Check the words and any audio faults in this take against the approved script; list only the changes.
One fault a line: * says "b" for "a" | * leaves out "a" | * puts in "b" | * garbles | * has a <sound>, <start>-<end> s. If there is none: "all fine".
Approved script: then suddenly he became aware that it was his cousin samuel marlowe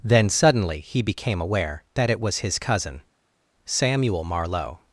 all fine